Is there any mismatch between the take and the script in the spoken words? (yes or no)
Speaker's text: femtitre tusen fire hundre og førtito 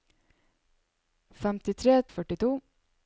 yes